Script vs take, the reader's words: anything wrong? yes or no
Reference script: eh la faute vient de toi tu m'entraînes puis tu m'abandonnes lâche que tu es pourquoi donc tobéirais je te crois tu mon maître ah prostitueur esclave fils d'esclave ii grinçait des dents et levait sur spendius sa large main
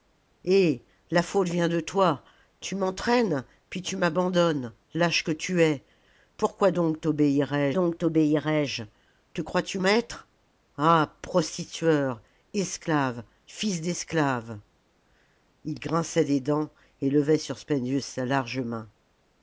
yes